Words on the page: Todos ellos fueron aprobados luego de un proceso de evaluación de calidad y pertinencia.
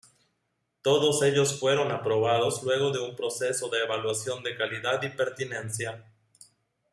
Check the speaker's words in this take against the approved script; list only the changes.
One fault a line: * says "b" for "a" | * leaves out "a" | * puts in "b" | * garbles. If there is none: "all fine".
all fine